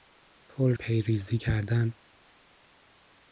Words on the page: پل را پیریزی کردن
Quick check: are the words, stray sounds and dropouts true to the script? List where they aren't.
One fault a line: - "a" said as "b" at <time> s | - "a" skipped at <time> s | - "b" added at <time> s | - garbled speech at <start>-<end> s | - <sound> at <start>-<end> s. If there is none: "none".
- "را" skipped at 0.8 s